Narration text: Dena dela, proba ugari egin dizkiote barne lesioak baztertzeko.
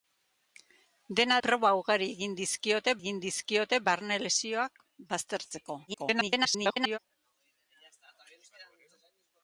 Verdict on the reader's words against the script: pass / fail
fail